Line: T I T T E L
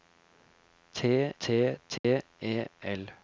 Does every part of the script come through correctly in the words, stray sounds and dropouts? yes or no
no